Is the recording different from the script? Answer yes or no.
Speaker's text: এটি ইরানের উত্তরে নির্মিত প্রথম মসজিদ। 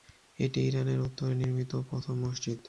no